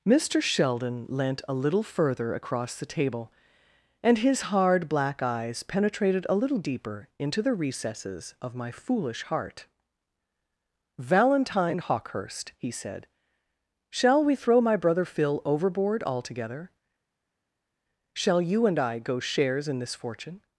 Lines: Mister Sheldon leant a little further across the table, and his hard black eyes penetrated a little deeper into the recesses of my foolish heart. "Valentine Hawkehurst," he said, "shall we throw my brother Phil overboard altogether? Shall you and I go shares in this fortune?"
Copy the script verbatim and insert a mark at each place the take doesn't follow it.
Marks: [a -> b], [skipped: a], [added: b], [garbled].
Mister Sheldon leant a little further across the table, and his hard black eyes penetrated a little deeper into the recesses of my foolish heart. "Valentine Hawkehurst," he said, "shall we throw my brother Phil overboard altogether? Shall you and I go shares in this fortune?"